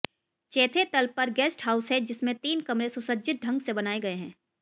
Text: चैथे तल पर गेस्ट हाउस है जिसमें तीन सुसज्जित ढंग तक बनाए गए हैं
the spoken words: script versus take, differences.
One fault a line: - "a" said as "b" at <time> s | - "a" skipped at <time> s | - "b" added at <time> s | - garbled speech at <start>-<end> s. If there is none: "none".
- "कमरे" added at 2.6 s
- "तक" said as "से" at 3.6 s